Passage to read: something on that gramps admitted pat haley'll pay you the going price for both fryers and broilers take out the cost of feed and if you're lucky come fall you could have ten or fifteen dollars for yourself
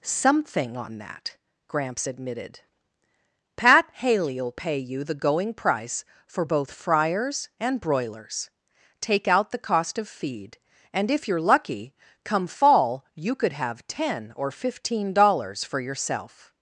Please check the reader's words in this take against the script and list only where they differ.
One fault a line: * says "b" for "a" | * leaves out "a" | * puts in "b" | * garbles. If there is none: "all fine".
all fine